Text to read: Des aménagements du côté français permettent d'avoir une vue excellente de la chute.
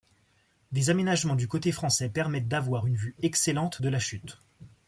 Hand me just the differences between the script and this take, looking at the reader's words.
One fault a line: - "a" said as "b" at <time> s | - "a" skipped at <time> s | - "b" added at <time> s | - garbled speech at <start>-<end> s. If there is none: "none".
none